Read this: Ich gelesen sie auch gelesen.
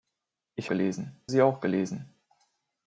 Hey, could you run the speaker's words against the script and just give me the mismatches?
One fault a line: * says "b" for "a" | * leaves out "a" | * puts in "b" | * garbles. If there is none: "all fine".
all fine